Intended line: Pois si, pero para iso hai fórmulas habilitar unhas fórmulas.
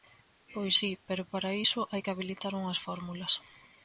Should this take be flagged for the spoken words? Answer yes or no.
yes